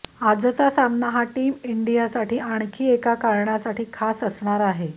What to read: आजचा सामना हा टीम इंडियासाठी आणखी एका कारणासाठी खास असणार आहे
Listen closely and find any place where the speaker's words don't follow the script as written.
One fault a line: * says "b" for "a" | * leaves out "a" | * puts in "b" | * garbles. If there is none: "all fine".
all fine